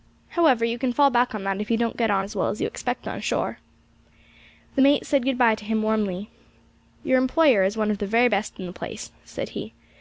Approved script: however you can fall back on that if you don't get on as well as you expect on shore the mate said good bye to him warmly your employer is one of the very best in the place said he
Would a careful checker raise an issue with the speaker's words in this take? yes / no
no